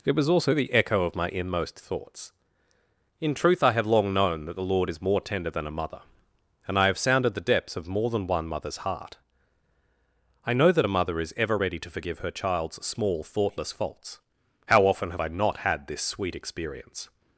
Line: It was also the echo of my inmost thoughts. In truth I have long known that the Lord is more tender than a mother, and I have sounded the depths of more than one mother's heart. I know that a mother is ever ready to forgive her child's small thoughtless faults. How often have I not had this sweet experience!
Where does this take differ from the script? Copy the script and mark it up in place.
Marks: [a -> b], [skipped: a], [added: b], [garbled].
It was also the echo of my inmost thoughts. In truth I have long known that the Lord is more tender than a mother, and I have sounded the depths of more than one mother's heart. I know that a mother is ever ready to forgive her child's small thoughtless faults. How often have I not had this sweet experience!